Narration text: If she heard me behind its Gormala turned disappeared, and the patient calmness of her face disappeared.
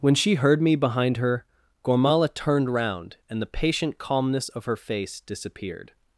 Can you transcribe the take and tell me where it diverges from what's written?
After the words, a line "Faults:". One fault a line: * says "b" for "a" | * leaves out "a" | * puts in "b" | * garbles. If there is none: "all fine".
When she heard me behind her Gormala turned round, and the patient calmness of her face disappeared.
Faults:
* says "When" for "If"
* says "her" for "its"
* says "round" for "disappeared"